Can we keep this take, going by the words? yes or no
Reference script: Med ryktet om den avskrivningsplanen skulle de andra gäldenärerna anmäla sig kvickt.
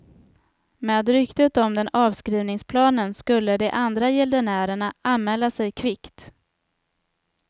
yes